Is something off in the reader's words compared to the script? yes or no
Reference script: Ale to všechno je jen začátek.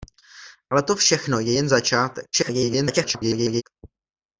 yes